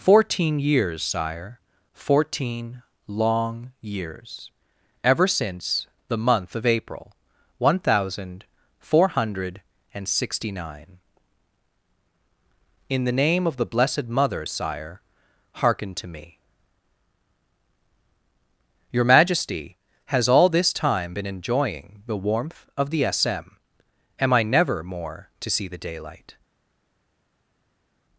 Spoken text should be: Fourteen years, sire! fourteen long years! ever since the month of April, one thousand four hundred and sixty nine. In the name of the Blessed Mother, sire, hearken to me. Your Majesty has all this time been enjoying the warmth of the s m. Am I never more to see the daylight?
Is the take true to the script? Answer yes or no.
yes